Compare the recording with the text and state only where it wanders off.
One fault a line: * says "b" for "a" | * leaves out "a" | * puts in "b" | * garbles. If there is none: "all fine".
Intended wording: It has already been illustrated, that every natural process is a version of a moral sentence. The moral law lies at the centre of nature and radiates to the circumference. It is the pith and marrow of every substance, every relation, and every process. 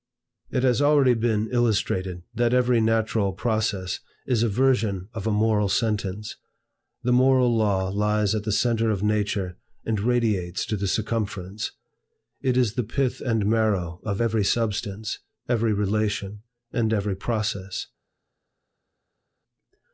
all fine